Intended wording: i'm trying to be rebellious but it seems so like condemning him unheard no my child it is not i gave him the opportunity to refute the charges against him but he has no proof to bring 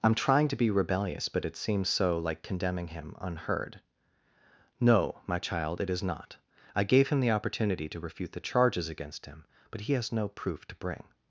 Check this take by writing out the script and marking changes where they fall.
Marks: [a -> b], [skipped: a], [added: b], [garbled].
i'm trying to be rebellious but it seems so like condemning him unheard no my child it is not i gave him the opportunity to refute the charges against him but he has no proof to bring